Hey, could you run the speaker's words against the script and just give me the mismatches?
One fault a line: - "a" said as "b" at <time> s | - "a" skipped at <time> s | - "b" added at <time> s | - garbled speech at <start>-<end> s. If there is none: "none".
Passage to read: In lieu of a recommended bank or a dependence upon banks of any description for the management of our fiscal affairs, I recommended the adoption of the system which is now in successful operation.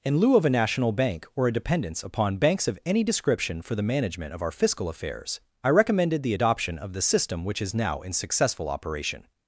- "recommended" said as "national" at 0.5 s